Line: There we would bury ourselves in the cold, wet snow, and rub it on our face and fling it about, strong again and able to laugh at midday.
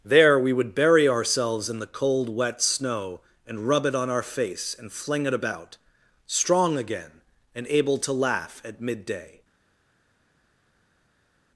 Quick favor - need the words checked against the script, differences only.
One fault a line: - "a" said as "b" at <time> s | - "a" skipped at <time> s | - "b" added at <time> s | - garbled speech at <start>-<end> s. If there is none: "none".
none